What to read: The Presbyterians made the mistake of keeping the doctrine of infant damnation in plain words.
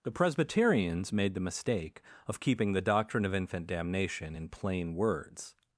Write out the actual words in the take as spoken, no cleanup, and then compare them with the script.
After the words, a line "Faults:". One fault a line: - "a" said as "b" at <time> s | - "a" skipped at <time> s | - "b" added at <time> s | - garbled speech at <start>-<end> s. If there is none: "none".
The Presbyterians made the mistake of keeping the doctrine of infant damnation in plain words.
Faults:
none